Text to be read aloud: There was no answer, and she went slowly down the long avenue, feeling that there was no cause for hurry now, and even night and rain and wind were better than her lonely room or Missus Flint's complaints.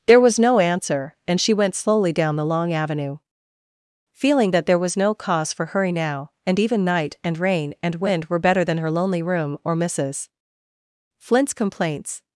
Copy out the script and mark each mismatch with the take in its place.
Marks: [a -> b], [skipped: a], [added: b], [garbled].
There was no answer, and she went slowly down the long avenue, feeling that there was no cause for hurry now, and even night and rain and wind were better than her lonely room or Missus Flint's complaints.